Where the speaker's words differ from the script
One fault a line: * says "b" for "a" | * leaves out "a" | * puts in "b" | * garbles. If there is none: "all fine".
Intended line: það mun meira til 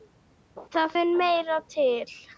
all fine